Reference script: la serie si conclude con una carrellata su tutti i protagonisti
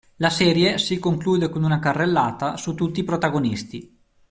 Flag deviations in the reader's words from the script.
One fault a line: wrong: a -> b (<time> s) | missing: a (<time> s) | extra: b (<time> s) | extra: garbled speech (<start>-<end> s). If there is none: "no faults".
no faults